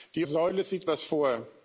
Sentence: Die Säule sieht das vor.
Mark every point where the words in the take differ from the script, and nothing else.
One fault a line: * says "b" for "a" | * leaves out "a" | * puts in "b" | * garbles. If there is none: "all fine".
all fine